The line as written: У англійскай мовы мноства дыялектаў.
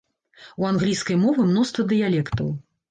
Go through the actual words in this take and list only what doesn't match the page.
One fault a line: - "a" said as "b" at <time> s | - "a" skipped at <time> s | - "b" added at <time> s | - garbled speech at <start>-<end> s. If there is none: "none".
none